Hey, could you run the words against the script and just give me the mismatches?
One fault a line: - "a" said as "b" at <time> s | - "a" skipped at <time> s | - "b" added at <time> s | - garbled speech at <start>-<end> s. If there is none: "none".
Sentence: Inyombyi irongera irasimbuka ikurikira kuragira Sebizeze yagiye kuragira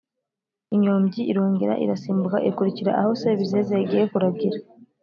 - "kuragira" said as "aho" at 3.0 s